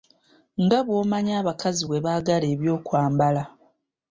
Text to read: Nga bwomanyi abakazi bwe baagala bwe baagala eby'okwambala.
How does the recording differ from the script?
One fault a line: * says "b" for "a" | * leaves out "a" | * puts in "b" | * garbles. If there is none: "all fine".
* leaves out "bwe baagala"